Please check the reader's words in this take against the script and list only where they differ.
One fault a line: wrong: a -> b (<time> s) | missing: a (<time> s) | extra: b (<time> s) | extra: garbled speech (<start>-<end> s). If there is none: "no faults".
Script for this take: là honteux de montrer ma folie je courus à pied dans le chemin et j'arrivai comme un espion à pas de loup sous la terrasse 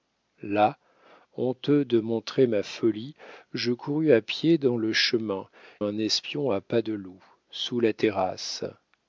missing: et j'arrivai comme (5.5 s)